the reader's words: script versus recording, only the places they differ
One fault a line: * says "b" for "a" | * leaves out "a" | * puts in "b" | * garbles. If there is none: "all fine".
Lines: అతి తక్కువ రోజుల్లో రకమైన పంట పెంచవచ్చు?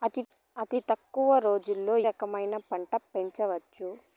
all fine